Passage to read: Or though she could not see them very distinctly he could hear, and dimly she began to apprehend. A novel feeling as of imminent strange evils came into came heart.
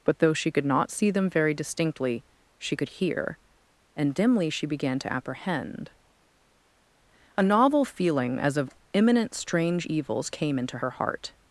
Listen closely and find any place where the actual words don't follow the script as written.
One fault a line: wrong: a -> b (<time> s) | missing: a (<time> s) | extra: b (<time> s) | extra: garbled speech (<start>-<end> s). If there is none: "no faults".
wrong: Or -> But (0.0 s)
wrong: he -> she (2.6 s)
wrong: came -> her (10.8 s)